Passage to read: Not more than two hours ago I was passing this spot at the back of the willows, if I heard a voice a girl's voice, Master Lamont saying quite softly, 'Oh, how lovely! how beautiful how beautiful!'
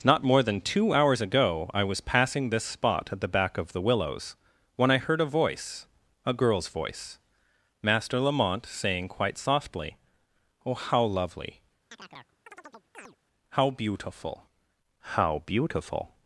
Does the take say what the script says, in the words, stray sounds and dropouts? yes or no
no